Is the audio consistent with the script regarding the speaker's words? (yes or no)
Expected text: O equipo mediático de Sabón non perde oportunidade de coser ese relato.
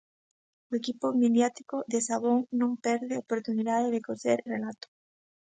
no